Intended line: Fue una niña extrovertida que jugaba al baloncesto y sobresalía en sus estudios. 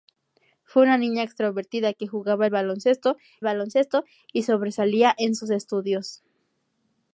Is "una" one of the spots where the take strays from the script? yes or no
no